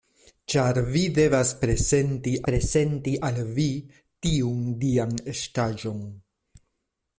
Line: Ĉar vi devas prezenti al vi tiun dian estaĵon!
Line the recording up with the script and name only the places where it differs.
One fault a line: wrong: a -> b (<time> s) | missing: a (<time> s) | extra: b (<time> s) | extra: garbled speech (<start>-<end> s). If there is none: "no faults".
extra: prezenti (2.5 s)